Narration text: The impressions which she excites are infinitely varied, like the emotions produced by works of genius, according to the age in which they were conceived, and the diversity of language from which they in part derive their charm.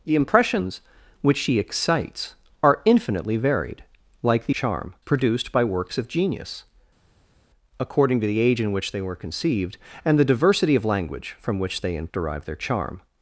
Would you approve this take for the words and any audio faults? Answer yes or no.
no